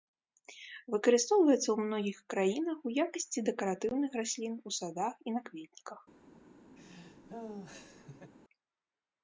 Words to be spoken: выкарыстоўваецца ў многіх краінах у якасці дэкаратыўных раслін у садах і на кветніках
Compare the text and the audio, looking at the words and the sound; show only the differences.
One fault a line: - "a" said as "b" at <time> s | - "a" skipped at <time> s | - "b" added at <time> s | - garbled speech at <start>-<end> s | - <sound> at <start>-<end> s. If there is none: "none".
- laugh at 6.8-8.3 s